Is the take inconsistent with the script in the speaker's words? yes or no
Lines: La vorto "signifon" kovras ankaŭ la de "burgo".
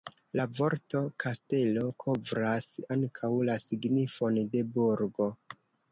yes